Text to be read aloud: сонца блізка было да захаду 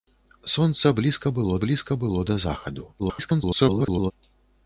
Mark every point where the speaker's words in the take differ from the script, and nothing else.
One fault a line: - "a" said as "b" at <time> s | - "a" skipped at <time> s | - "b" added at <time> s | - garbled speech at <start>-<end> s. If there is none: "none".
- "блізка было" added at 1.7 s
- garbled speech at 3.0-4.1 s